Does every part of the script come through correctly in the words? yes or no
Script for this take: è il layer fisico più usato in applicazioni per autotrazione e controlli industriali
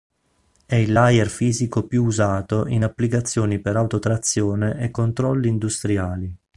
yes